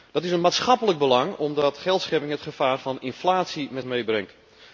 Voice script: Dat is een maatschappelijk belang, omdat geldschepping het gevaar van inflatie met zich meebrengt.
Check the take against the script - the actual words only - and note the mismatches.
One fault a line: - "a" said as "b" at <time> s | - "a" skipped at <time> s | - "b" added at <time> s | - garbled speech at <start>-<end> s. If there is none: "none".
- "zich" skipped at 3.9 s